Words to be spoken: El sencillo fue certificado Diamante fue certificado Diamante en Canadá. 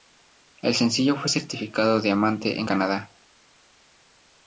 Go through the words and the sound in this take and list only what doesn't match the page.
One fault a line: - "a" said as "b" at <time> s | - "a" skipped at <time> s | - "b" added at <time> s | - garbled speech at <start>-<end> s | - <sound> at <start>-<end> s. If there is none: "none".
- "fue certificado Diamante" skipped at 2.6 s